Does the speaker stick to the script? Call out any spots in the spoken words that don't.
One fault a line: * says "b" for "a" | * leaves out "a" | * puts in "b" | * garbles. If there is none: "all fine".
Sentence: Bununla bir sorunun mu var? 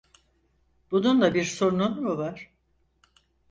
all fine